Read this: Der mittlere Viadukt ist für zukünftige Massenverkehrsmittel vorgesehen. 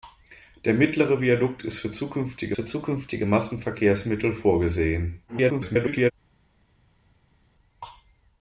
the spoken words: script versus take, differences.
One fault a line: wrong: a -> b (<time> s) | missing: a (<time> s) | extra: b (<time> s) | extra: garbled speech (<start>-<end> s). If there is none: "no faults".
extra: für zukünftige (2.5 s)
extra: garbled speech (5.3-6.1 s)